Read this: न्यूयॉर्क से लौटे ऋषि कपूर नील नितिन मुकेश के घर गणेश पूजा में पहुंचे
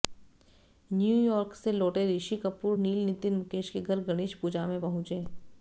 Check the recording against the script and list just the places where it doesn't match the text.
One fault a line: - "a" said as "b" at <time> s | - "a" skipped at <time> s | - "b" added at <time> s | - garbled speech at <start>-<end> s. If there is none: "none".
none